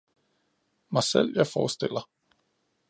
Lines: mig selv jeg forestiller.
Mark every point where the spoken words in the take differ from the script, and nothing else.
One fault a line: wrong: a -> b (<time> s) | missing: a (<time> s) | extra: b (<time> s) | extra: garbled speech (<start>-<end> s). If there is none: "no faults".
no faults